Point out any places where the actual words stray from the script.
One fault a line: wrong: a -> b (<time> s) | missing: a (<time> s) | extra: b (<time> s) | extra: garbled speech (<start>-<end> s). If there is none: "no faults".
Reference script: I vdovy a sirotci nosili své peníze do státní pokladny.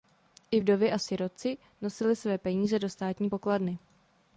no faults